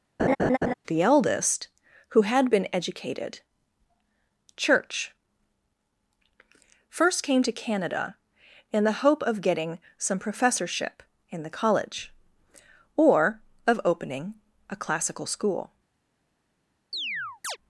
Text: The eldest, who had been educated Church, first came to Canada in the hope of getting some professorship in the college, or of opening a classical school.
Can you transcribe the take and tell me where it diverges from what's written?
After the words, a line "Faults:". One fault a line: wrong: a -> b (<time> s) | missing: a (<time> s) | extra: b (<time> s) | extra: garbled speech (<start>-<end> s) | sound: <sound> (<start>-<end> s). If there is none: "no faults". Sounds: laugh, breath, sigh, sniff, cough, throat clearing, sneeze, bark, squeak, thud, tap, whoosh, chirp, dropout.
The eldest, who had been educated Church, first came to Canada in the hope of getting some professorship in the college, or of opening a classical school.
Faults:
sound: laugh (0.2-0.7 s)
sound: chirp (16.9-17.6 s)